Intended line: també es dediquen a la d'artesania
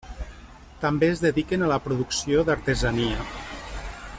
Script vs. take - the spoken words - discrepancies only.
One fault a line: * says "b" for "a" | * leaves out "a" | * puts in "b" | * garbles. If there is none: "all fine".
* puts in "producció"